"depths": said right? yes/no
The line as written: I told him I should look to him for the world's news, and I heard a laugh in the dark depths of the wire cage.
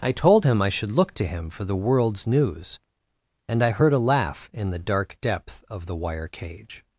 no